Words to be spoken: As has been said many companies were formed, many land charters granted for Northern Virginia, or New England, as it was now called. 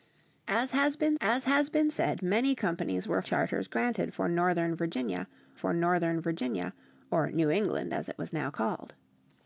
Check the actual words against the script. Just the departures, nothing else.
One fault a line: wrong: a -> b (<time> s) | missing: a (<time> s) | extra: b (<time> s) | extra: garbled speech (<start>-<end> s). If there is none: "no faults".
extra: as has been (1.2 s)
wrong: formed many land charters granted -> charters granted for Northern Virginia (3.2 s)